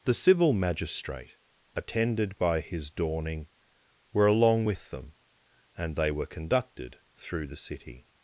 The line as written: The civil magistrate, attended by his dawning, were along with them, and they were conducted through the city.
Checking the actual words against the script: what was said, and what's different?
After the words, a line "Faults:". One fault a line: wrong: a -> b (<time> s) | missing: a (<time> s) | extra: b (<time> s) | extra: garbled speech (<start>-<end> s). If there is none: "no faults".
The civil magistrate, attended by his dawning, were along with them, and they were conducted through the city.
Faults:
no faults